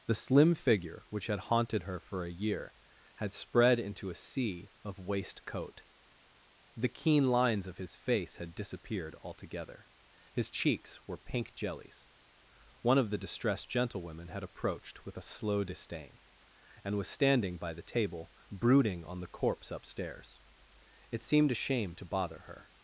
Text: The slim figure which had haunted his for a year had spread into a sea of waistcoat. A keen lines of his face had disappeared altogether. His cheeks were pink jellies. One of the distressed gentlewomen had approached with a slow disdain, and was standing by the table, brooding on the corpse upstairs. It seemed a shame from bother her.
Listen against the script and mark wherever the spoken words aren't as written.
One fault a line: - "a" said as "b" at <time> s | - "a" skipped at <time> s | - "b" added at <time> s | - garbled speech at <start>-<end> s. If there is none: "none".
- "his" said as "her" at 1.8 s
- "A" said as "The" at 6.8 s
- "from" said as "to" at 22.0 s